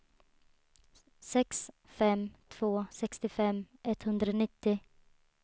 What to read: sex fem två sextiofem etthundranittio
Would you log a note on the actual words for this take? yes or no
no